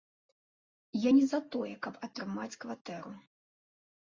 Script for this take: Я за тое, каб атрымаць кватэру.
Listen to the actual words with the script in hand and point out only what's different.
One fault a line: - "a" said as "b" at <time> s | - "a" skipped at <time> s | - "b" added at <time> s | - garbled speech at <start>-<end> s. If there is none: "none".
- "не" added at 1.1 s